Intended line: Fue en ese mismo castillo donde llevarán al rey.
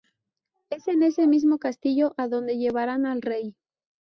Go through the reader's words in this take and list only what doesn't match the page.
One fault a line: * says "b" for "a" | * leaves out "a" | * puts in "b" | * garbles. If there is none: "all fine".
* says "Es" for "Fue"
* puts in "a"